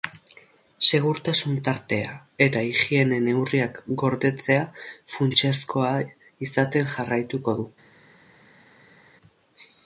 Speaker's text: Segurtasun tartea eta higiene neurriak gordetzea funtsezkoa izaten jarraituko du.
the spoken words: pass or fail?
pass